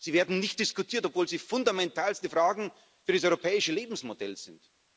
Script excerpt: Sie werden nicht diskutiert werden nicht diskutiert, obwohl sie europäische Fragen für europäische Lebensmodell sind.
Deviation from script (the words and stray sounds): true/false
true